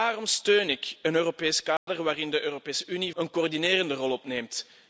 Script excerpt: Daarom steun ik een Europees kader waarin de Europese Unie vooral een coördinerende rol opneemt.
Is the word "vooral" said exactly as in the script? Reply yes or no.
no